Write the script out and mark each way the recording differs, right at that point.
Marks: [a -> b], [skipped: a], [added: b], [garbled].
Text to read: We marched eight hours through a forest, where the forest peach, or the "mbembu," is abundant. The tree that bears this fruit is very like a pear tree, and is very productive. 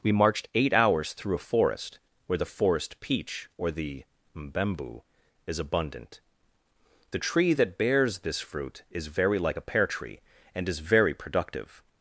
We marched eight hours through a forest, where the forest peach, or the "mbembu," is abundant. The tree that bears this fruit is very like a pear tree, and is very productive.